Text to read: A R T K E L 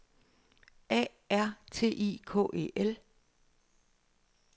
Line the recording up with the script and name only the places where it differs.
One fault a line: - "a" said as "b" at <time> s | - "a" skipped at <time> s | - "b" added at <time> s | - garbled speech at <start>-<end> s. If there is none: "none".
- "I" added at 1.9 s